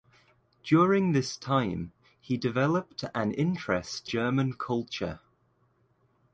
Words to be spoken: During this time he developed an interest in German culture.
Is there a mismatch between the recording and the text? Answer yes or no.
yes